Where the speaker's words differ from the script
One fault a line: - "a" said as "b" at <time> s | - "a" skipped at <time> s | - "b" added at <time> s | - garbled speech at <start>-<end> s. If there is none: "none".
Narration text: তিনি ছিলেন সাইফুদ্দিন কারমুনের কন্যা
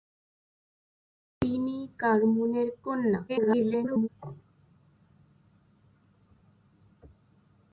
- "ছিলেন সাইফুদ্দিন" skipped at 1.8 s
- garbled speech at 3.3-4.1 s